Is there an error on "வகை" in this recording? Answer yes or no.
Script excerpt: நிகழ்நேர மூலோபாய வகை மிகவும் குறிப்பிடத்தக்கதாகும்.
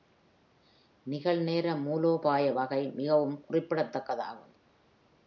no